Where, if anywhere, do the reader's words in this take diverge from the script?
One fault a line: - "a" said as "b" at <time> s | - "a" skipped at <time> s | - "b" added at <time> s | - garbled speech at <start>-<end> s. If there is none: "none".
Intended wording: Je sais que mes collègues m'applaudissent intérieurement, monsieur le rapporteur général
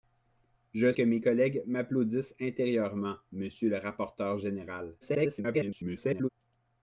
- "sais" skipped at 0.9 s
- garbled speech at 5.0-6.3 s